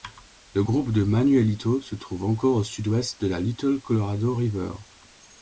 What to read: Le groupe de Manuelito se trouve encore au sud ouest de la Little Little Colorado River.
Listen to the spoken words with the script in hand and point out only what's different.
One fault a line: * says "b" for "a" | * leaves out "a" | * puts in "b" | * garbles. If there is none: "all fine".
* leaves out "Little"